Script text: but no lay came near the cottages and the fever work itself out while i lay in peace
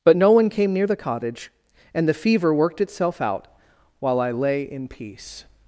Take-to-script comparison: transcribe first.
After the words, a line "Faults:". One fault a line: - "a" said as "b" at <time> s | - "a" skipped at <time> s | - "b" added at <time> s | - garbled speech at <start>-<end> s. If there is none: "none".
but no one came near the cottage and the fever worked itself out while i lay in peace
Faults:
- "lay" said as "one" at 0.3 s
- "cottages" said as "cottage" at 1.0 s
- "work" said as "worked" at 2.5 s